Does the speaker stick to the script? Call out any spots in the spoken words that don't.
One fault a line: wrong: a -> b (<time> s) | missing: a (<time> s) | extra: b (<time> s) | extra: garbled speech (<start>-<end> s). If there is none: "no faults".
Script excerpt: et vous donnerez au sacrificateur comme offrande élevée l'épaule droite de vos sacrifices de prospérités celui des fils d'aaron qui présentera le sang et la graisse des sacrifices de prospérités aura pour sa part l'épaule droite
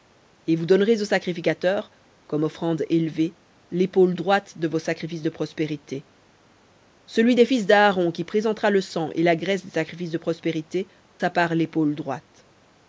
missing: aura pour (10.9 s)